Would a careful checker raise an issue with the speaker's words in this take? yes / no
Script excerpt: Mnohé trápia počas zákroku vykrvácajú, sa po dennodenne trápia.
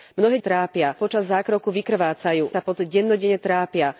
no